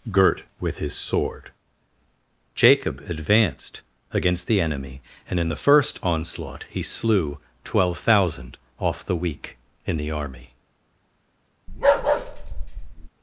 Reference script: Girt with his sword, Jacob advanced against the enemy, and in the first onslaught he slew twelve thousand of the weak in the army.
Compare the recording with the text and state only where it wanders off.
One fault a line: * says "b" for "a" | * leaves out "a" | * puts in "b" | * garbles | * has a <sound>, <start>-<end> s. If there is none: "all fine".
* says "off" for "of"
* has a bark, 11.7-13.1 s